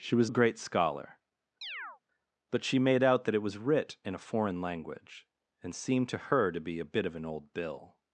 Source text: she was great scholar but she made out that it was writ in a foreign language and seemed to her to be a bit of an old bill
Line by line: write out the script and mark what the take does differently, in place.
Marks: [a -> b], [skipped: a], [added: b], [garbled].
she was great scholar but she made out that it was writ in a foreign language and seemed to her to be a bit of an old bill